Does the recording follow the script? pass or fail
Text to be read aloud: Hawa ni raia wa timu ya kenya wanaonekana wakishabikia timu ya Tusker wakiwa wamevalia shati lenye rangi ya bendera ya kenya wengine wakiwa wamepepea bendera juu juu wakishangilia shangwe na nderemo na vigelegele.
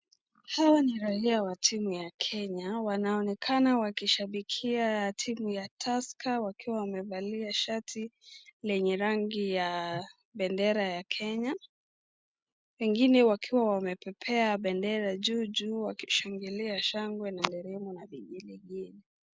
pass